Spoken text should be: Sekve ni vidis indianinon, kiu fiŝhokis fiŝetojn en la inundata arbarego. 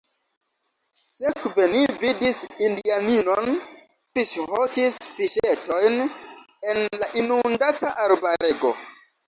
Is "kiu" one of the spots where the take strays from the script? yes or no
yes